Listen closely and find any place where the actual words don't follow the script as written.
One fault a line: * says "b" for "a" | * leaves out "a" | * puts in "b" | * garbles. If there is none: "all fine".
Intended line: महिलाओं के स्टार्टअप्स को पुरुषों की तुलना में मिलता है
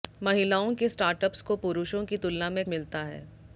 all fine